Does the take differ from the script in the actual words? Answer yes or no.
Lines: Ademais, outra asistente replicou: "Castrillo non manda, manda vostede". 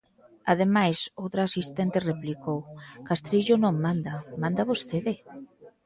no